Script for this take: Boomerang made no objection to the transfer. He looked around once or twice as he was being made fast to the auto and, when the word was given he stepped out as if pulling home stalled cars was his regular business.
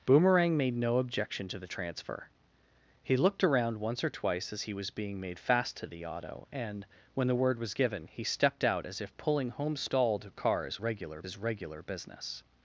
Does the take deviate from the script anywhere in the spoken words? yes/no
yes